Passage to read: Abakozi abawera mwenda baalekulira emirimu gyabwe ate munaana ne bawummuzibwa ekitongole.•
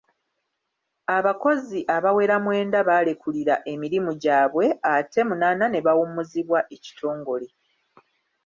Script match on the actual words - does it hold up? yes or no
yes